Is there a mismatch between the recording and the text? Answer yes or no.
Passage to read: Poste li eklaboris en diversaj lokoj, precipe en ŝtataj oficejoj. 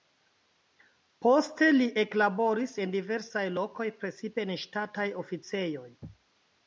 no